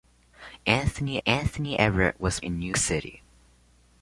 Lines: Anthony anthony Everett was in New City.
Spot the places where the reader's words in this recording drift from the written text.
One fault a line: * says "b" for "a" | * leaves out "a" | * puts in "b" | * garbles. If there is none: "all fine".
all fine